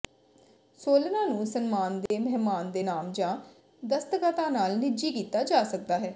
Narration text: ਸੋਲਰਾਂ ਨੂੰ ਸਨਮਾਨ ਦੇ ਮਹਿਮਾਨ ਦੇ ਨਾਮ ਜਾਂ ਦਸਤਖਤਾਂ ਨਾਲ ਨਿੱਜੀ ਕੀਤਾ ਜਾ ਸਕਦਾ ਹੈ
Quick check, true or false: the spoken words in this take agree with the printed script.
true